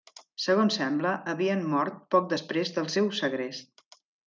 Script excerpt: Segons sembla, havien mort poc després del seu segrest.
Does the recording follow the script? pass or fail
pass